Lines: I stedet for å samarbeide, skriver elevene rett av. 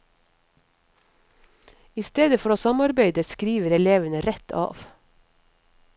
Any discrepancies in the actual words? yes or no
no